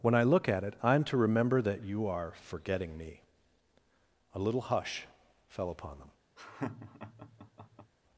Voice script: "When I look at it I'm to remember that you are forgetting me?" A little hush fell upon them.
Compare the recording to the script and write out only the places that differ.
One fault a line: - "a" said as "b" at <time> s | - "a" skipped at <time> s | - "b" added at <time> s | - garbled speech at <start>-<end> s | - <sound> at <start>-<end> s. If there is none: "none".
- laugh at 6.4-7.9 s